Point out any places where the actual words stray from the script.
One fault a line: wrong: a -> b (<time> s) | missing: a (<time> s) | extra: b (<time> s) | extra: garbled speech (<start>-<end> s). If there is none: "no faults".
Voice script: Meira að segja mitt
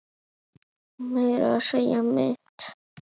no faults